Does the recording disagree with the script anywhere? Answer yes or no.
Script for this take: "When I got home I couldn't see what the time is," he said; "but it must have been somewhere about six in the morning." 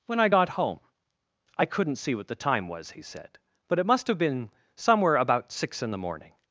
yes